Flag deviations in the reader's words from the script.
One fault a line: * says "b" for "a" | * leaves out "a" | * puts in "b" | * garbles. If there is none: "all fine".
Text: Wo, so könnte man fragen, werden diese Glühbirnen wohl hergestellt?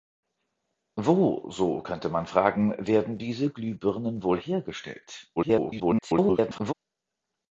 * garbles